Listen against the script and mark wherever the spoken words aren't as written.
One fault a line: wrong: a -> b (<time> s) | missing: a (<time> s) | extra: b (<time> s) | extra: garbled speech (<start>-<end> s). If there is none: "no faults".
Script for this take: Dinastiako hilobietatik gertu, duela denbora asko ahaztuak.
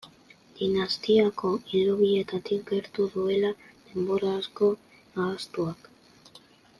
no faults